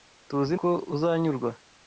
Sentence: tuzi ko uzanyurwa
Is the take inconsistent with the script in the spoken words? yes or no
no